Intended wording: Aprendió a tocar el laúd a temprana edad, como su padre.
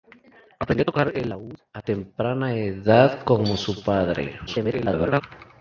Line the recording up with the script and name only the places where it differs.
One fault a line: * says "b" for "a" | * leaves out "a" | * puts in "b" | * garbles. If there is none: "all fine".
* garbles